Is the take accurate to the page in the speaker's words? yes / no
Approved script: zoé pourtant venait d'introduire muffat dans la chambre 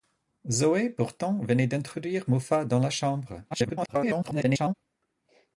no